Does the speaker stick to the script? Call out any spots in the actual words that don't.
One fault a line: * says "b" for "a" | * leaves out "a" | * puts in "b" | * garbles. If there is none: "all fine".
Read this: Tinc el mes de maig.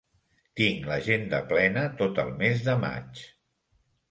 * puts in "l'agenda plena tot"